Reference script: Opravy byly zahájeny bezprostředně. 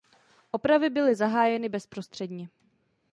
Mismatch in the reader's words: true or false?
false